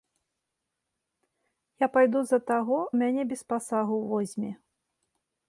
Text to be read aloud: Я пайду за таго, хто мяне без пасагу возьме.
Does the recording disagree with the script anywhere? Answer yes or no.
yes